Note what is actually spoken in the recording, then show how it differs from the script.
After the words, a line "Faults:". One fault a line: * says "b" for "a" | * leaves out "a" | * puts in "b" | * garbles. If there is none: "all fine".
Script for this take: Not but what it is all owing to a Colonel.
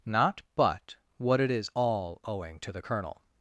Not but what it is all owing to the Colonel.
Faults:
* says "the" for "a"